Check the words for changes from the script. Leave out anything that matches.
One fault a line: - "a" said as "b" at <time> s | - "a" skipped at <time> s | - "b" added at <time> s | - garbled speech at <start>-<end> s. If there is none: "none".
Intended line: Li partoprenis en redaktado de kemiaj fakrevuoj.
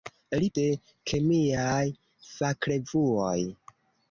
- "partoprenis en redaktado" skipped at 0.5 s